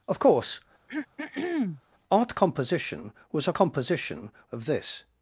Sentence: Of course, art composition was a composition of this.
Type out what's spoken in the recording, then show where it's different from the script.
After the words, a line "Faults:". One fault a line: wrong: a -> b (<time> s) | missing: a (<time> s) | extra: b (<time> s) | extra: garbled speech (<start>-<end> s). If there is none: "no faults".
Of course, art composition was a composition of this.
Faults:
no faults